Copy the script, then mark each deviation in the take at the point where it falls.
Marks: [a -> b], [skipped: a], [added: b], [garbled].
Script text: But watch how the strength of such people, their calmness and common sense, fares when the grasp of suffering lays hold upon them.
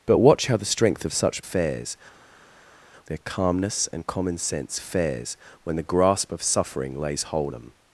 But watch how the strength of such [people, -> fares] their calmness and common sense, fares when the grasp of suffering lays hold [skipped: upon] them.